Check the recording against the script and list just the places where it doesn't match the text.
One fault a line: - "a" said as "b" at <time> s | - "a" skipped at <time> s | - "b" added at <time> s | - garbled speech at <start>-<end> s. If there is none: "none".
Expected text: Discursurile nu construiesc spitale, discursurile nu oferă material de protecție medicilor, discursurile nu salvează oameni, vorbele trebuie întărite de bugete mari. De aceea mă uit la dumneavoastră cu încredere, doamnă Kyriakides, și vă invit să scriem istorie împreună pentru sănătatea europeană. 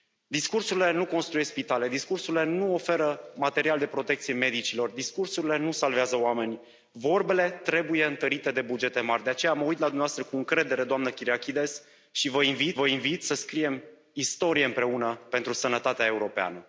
- "vă invit" added at 12.7 s